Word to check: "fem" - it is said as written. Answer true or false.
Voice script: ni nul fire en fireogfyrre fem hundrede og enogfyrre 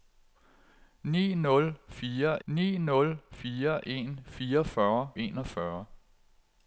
false